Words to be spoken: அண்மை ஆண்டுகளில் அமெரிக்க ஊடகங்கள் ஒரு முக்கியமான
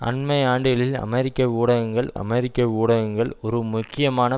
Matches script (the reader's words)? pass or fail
fail